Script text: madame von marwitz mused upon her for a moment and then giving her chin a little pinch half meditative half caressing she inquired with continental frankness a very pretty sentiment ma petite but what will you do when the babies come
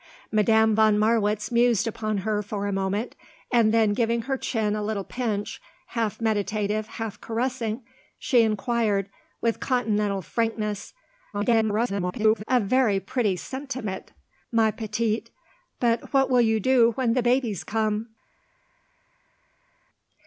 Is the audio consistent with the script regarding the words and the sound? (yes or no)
no